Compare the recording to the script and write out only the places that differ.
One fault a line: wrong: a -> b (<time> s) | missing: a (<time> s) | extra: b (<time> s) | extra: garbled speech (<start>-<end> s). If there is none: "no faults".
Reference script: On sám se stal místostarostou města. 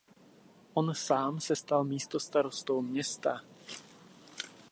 no faults